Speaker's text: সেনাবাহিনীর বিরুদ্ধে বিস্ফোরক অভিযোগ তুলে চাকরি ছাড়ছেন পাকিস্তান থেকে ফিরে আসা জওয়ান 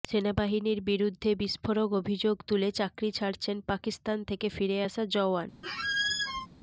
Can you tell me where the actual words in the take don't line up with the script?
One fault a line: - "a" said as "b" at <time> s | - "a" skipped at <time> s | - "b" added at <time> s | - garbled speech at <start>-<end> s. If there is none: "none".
none